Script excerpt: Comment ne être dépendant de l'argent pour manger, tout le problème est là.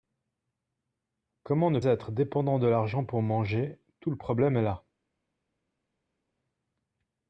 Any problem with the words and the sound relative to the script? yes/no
no